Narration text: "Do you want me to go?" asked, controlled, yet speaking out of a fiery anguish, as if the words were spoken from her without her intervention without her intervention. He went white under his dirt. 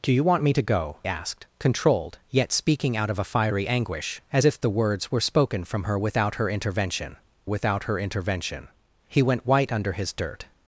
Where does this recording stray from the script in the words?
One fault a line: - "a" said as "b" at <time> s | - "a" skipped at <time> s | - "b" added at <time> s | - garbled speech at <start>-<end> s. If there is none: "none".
none